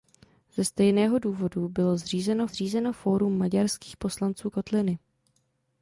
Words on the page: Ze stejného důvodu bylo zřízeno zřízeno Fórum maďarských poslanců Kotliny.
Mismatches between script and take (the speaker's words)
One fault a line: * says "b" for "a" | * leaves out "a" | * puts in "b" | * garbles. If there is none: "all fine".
all fine